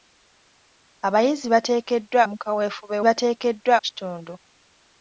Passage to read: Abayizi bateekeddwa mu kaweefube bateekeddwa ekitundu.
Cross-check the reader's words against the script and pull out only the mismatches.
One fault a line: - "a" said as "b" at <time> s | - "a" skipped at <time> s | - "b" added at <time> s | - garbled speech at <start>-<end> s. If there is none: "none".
none